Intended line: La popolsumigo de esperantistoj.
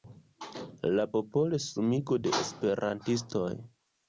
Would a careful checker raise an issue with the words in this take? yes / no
no